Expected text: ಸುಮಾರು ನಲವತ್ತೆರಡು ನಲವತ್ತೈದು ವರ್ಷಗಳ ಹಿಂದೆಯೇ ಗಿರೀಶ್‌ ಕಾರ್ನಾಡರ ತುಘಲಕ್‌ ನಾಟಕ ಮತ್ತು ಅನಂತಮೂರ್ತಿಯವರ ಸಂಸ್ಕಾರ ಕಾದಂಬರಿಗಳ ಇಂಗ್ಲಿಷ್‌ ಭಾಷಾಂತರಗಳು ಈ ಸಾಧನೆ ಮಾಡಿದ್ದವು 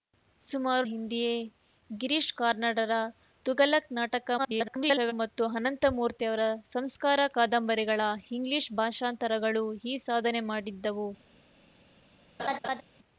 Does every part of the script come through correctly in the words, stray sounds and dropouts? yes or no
no